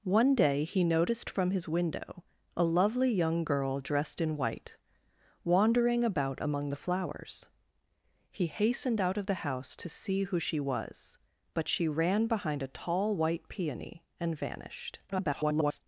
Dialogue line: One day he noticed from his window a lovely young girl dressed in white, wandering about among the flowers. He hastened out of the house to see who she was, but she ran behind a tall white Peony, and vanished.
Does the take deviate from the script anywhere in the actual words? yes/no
yes